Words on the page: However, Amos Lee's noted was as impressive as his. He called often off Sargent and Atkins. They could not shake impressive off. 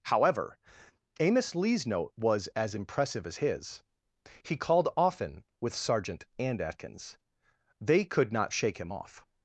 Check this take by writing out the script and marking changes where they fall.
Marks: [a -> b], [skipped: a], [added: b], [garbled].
However, Amos Lee's [noted -> note] was as impressive as his. He called often [off -> with] Sargent and Atkins. They could not shake [impressive -> him] off.